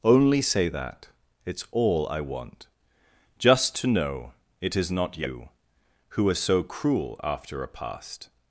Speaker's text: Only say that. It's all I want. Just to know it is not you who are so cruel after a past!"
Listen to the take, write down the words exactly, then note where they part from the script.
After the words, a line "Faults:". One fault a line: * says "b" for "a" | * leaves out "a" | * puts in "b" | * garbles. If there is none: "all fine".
Only say that. It's all I want. Just to know it is not you who are so cruel after a past!"
Faults:
all fine